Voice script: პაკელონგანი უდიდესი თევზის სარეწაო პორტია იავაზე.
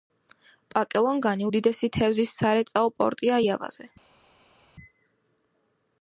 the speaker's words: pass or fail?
pass